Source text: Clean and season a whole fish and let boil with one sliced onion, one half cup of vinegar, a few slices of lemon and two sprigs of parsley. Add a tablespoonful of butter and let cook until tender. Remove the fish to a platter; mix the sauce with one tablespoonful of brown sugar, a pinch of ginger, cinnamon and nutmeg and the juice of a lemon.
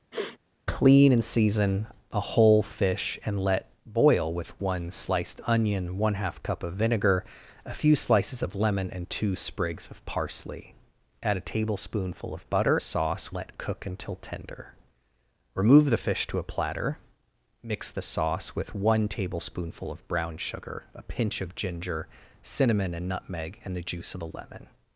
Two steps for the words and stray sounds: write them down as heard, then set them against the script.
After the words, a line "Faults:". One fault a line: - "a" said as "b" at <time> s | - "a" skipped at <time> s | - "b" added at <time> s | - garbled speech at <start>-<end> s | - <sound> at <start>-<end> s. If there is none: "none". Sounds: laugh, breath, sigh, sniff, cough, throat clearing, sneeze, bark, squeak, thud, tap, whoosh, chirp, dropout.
Clean and season a whole fish and let boil with one sliced onion, one half cup of vinegar, a few slices of lemon and two sprigs of parsley. Add a tablespoonful of butter sauce let cook until tender. Remove the fish to a platter; mix the sauce with one tablespoonful of brown sugar, a pinch of ginger, cinnamon and nutmeg and the juice of a lemon.
Faults:
- sniff at 0.1-0.4 s
- "and" said as "sauce" at 12.8 s